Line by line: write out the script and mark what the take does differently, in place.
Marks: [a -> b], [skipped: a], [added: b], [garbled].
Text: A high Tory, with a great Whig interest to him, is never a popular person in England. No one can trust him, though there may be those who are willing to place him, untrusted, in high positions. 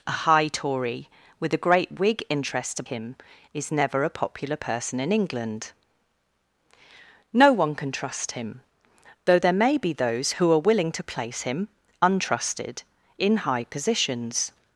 A high Tory, with a great Whig interest to him, is never a popular person in England. No one can trust him, though there may be those who are willing to place him, untrusted, in high positions.